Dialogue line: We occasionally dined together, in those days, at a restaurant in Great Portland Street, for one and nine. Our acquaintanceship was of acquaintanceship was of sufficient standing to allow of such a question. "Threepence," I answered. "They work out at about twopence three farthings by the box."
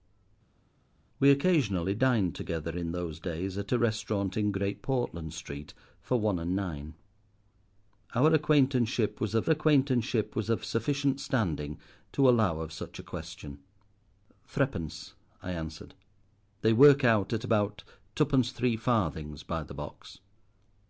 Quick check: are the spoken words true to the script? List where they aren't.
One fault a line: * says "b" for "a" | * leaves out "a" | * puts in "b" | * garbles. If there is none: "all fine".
all fine